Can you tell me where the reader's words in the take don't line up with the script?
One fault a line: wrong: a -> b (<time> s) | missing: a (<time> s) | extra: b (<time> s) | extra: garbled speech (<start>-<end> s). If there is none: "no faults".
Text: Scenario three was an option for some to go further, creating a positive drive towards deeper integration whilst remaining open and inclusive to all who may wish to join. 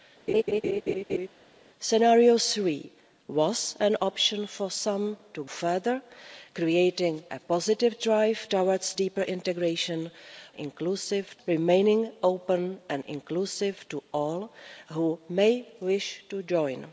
missing: go (5.4 s)
wrong: whilst -> inclusive (10.6 s)